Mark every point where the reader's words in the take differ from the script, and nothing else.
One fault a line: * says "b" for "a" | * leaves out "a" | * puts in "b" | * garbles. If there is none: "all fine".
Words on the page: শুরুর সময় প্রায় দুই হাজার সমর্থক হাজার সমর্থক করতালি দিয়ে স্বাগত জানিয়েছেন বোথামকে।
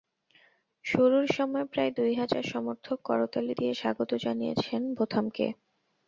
* leaves out "হাজার সমর্থক"